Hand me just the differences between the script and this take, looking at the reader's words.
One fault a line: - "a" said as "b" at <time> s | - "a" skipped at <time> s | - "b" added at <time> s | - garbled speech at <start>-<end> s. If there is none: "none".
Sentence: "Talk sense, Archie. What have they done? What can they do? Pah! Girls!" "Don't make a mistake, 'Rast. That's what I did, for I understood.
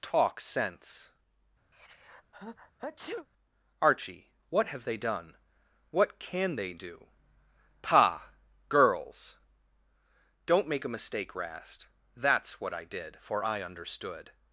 none